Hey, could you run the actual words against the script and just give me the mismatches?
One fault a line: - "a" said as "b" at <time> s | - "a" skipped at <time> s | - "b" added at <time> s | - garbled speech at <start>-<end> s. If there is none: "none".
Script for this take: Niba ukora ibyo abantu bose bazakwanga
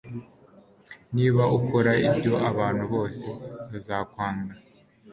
none